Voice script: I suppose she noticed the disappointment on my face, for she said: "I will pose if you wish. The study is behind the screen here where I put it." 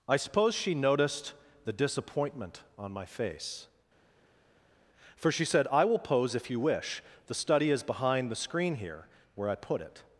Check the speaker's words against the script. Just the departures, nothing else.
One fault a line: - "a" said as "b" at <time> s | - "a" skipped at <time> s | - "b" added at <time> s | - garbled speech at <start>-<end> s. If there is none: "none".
none